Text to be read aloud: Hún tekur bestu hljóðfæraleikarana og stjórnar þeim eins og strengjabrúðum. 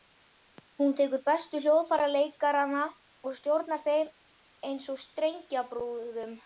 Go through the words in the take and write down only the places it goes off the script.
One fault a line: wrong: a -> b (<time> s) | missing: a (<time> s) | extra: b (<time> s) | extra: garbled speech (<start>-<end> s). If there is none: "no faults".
no faults